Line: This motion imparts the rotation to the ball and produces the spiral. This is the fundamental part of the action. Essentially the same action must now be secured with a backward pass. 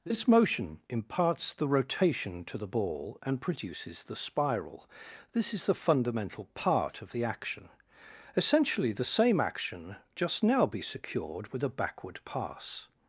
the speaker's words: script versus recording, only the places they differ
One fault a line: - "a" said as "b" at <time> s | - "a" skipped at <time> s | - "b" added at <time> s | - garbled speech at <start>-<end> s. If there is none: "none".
- "must" said as "just" at 10.2 s